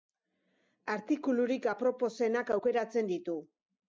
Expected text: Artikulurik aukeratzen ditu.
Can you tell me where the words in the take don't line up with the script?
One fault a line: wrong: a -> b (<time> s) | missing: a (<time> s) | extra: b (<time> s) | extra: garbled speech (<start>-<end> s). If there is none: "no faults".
extra: aproposenak (1.7 s)